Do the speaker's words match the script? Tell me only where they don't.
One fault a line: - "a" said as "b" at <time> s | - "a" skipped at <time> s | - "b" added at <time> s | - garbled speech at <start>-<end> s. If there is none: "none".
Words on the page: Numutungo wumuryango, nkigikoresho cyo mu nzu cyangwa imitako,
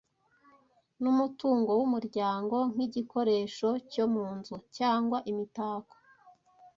none